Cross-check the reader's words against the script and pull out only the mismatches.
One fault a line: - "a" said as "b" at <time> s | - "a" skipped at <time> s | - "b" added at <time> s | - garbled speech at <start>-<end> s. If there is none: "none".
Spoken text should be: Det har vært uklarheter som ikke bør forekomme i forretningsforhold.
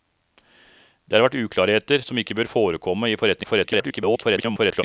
- garbled speech at 3.4-4.8 s